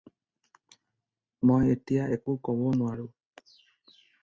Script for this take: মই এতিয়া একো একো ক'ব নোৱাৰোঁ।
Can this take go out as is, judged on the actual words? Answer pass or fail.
fail